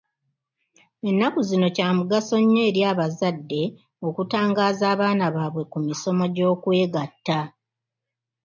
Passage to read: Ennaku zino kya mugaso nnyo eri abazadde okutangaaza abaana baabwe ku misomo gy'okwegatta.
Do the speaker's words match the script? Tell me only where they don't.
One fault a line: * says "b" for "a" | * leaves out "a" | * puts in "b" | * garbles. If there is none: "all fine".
all fine